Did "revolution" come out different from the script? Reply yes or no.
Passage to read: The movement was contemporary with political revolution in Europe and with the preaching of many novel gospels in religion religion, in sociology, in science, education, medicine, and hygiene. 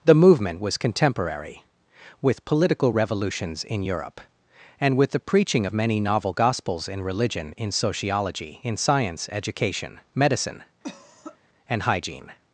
yes